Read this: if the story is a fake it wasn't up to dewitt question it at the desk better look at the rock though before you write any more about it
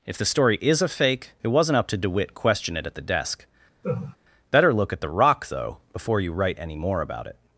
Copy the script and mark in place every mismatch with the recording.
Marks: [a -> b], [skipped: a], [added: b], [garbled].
if the story is a fake it wasn't up to dewitt question it at the desk better look at the rock though before you write any more about it